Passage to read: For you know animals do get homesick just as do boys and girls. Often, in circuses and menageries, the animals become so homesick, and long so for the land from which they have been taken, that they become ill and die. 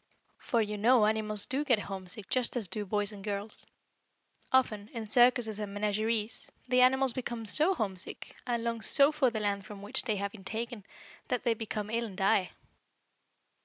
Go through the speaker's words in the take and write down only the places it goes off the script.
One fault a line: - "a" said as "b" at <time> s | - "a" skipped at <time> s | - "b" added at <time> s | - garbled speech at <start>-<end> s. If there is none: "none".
none